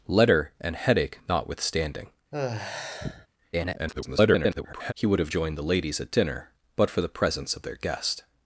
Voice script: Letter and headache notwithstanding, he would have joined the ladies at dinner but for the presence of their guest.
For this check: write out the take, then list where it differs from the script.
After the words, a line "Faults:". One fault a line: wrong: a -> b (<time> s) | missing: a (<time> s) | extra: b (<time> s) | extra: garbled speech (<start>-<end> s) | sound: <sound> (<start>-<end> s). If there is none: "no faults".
Letter and headache notwithstanding, [garbled] he would have joined the ladies at dinner but for the presence of their guest.
Faults:
sound: sigh (2.3-3.3 s)
extra: garbled speech (3.5-4.9 s)